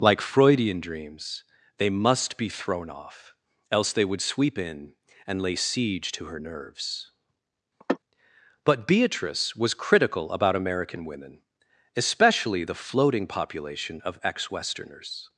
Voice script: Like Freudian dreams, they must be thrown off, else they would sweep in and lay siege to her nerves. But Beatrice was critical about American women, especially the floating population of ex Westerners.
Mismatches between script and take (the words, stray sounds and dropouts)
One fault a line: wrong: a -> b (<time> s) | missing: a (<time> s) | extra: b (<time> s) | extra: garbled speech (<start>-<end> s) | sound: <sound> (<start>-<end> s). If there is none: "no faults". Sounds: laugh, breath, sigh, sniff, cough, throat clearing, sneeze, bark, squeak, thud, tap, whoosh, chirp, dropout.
sound: sneeze (7.8-8.0 s)